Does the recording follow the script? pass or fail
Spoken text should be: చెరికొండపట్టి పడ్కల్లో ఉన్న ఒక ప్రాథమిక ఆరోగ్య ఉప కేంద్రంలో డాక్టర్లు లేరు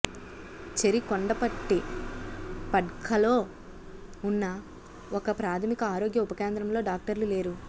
pass